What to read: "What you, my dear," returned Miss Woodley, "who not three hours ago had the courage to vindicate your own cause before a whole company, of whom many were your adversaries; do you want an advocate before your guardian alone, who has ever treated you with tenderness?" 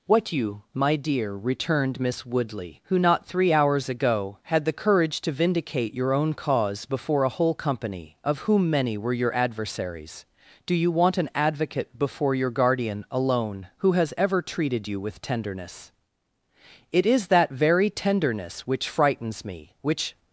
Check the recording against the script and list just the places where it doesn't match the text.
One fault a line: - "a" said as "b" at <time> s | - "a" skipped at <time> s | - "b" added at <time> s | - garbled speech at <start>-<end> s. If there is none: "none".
- "It is that very tenderness which frightens me which" added at 16.9 s